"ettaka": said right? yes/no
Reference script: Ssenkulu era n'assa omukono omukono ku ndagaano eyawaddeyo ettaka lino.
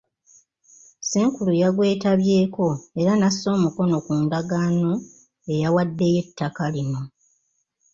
yes